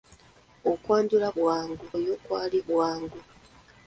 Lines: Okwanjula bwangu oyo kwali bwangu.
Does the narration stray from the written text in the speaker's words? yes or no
no